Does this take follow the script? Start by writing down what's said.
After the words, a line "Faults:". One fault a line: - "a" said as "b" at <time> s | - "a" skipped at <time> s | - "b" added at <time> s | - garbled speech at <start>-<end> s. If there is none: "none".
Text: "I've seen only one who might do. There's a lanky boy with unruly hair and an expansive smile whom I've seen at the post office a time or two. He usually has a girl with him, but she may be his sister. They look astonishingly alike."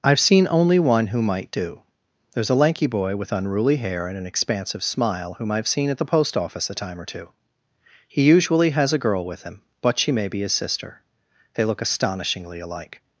"I've seen only one who might do. There's a lanky boy with unruly hair and an expansive smile whom I've seen at the post office a time or two. He usually has a girl with him, but she may be his sister. They look astonishingly alike."
Faults:
none